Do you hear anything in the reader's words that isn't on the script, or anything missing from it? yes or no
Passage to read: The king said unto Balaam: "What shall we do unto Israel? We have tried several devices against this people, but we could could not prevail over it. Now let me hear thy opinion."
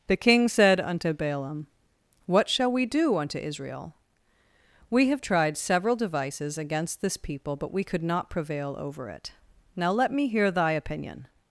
yes